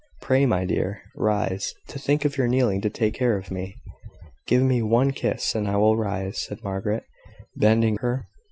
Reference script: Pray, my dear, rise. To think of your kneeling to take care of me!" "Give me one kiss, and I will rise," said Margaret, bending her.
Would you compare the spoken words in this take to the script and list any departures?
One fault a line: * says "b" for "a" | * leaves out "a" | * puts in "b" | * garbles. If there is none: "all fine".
all fine